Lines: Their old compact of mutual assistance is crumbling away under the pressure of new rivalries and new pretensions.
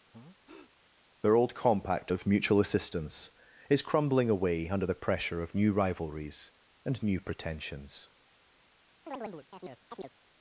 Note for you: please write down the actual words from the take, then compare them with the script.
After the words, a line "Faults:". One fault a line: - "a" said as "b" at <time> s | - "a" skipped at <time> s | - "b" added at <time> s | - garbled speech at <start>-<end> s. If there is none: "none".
Their old compact of mutual assistance is crumbling away under the pressure of new rivalries and new pretensions.
Faults:
none